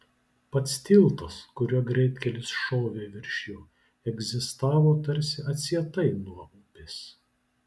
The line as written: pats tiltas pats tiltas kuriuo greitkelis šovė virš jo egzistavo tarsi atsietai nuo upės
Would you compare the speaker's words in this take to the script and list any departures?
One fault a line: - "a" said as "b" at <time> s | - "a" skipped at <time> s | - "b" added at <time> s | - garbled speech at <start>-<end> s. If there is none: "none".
- "pats tiltas" skipped at 1.4 s